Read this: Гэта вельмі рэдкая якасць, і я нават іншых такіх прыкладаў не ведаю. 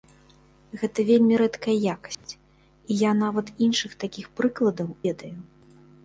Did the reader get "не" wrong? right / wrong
wrong